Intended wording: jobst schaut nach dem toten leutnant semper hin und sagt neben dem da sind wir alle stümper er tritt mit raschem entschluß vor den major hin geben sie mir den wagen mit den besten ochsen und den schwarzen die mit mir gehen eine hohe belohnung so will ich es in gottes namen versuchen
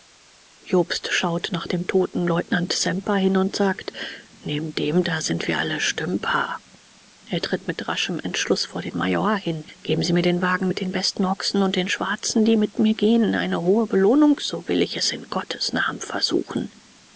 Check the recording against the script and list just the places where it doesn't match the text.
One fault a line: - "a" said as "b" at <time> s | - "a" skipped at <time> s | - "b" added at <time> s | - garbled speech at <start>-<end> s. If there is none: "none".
none